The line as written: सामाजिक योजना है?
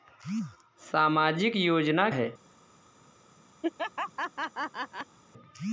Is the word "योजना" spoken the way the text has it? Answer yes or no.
yes